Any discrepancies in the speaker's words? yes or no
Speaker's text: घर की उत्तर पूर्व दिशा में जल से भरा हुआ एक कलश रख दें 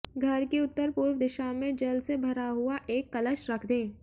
no